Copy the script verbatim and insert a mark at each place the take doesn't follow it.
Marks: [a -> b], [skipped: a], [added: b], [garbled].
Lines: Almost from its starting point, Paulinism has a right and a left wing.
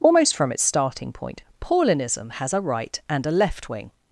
Almost from its starting point, Paulinism has a right and a left wing.